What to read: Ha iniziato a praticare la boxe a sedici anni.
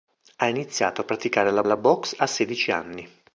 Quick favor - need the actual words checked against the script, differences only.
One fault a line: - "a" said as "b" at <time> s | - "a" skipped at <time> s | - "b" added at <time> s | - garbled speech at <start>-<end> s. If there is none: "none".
- "la" added at 1.6 s